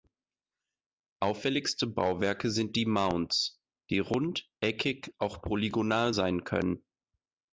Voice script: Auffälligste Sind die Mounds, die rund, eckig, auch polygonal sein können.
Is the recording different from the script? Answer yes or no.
yes